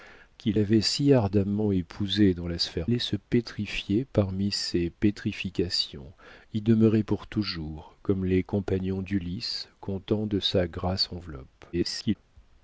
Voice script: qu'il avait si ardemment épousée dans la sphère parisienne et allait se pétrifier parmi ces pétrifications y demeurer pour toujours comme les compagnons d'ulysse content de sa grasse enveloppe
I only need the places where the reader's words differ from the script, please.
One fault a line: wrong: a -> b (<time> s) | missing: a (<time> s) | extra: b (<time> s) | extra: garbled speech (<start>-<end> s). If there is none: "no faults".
missing: parisienne et (2.9 s)
extra: garbled speech (11.7-12.2 s)